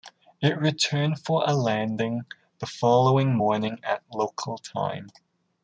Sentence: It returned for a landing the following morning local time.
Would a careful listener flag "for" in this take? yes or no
no